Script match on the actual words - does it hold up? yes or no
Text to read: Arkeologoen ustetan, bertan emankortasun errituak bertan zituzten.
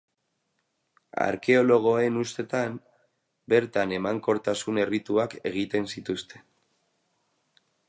no